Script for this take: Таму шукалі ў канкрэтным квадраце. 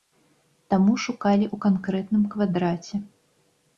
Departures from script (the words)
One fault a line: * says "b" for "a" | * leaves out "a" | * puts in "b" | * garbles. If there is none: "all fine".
all fine